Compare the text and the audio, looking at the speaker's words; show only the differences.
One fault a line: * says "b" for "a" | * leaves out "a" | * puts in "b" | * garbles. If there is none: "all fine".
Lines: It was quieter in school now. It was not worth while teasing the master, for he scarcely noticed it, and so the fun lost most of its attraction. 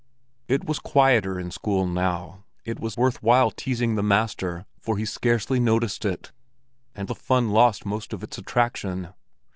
* leaves out "not"
* leaves out "so"